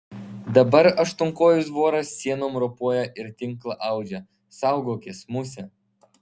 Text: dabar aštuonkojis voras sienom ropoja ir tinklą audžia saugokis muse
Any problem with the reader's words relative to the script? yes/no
no